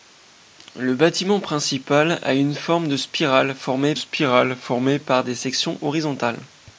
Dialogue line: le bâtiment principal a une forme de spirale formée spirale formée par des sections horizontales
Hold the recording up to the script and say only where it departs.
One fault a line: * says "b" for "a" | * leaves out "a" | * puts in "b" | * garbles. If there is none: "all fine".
all fine